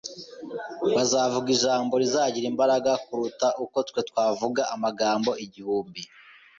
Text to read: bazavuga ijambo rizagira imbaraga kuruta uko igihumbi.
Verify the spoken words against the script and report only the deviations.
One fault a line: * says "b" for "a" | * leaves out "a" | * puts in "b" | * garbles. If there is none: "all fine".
* puts in "twe twavuga amagambo"